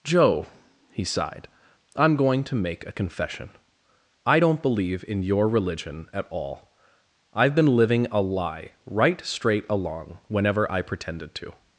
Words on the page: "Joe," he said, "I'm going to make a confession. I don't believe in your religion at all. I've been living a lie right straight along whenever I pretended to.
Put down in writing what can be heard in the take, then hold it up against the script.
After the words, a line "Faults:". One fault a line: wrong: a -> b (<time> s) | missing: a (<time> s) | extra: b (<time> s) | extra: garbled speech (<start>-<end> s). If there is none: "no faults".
"Joe," he sighed, "I'm going to make a confession. I don't believe in your religion at all. I've been living a lie right straight along whenever I pretended to.
Faults:
wrong: said -> sighed (1.0 s)